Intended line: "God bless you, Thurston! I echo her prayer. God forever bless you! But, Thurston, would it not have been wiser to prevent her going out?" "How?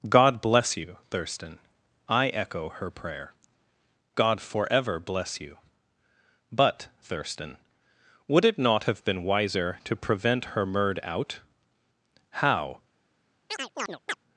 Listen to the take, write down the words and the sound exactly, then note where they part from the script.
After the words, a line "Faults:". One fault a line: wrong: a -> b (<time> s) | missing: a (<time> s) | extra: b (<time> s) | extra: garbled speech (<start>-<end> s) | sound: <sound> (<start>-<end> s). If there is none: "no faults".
"God bless you, Thurston! I echo her prayer. God forever bless you! But, Thurston, would it not have been wiser to prevent her murd out?" "How?
Faults:
wrong: going -> murd (10.7 s)
sound: chirp (13.5-14.2 s)